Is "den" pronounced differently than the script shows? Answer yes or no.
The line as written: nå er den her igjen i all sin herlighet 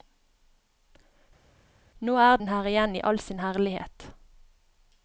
no